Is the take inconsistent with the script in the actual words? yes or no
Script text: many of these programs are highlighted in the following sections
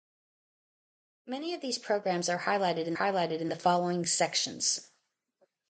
yes